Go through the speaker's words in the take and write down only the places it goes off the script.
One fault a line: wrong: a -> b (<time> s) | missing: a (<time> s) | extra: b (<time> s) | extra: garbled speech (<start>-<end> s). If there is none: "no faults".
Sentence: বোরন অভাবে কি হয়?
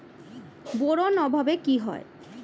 no faults